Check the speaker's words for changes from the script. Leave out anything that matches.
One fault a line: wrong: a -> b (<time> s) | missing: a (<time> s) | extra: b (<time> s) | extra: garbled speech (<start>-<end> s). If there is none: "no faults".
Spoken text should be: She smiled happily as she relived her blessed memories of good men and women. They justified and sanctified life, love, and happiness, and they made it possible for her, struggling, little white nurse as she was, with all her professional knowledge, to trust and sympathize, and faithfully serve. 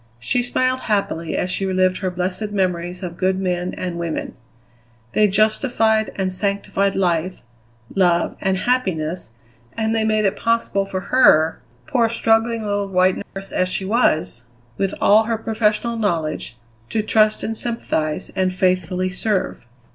extra: poor (11.8 s)